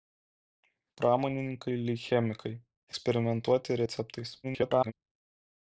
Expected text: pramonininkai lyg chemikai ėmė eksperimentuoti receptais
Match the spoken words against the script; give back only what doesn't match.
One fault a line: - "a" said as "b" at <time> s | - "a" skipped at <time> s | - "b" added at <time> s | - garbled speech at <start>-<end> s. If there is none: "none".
- "ėmė" skipped at 2.5 s
- garbled speech at 4.4-4.9 s